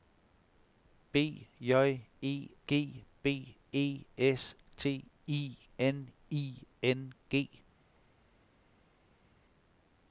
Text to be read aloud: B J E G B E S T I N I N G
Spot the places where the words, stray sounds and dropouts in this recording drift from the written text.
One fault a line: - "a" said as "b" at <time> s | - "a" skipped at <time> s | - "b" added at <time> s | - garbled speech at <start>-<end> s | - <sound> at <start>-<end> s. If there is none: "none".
none